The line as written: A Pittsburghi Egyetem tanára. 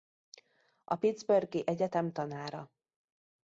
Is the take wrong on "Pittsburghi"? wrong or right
right